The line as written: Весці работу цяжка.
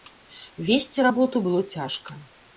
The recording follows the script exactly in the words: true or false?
false